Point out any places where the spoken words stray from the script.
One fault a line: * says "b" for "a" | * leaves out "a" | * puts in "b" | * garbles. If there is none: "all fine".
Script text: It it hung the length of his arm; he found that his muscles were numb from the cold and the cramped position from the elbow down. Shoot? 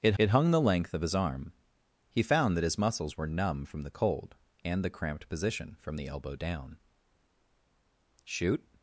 all fine